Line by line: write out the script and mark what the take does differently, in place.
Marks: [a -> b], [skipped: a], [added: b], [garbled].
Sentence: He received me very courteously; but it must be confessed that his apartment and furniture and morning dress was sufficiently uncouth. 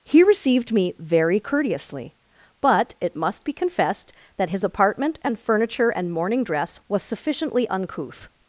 He received me very courteously; but it must be confessed that his apartment and furniture and morning dress was sufficiently uncouth.